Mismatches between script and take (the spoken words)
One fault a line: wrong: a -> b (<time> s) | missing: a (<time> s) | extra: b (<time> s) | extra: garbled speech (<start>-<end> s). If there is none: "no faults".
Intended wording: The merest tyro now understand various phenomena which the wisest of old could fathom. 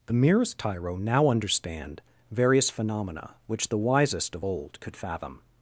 no faults